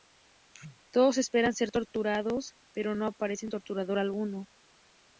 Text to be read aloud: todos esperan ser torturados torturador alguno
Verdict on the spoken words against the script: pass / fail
fail